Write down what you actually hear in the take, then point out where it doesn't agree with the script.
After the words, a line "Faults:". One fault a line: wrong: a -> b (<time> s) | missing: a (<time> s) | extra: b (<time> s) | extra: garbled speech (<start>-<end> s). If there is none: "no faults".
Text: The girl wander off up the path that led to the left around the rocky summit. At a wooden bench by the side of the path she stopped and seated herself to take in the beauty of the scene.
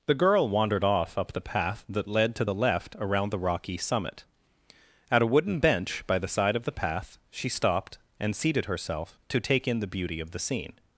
The girl wandered off up the path that led to the left around the rocky summit. At a wooden bench by the side of the path she stopped and seated herself to take in the beauty of the scene.
Faults:
wrong: wander -> wandered (0.5 s)